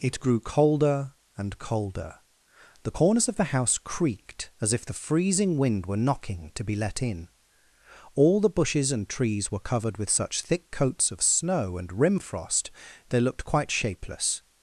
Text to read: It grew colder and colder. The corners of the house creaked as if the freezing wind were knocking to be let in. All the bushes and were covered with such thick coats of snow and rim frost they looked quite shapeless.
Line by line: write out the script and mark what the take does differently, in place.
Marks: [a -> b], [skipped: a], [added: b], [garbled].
It grew colder and colder. The corners of the house creaked as if the freezing wind were knocking to be let in. All the bushes and [added: trees] were covered with such thick coats of snow and rim frost they looked quite shapeless.